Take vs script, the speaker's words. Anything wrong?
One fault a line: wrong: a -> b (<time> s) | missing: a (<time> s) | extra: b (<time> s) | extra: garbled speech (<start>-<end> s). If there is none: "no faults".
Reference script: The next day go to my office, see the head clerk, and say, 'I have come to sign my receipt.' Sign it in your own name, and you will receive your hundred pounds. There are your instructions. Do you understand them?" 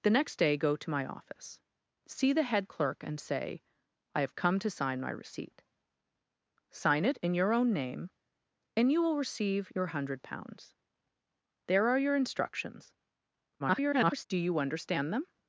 extra: garbled speech (13.6-14.3 s)